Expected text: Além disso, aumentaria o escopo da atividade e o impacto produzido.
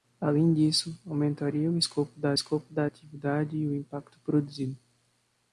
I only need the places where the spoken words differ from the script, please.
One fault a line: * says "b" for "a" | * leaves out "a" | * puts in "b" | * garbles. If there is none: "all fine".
* puts in "escopo da"